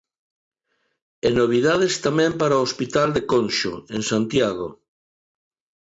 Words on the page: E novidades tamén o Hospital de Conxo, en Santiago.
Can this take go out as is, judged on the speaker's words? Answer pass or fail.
fail